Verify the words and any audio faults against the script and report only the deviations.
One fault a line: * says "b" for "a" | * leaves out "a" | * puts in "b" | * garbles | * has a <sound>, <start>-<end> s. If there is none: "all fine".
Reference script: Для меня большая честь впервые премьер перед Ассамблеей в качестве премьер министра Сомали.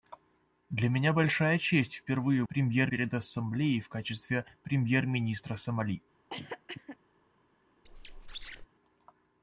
* has a cough, 6.3-7.0 s
* has a squeak, 7.9-8.7 s